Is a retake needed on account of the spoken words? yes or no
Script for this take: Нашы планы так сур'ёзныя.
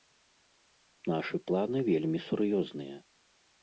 yes